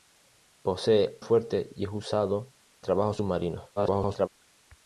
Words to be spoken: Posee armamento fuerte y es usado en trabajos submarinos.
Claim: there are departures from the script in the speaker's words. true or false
true